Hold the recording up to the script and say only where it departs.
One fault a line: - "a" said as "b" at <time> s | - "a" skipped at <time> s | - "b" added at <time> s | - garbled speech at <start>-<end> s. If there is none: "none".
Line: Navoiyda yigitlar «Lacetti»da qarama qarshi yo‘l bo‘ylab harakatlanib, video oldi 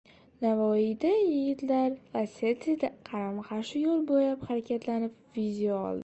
none